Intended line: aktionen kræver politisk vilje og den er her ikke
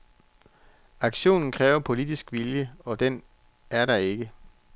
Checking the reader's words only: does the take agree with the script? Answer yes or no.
no